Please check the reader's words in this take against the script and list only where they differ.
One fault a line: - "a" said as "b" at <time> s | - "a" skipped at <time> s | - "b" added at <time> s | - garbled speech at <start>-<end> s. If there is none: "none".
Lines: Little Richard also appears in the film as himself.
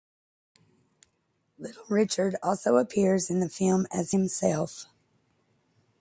none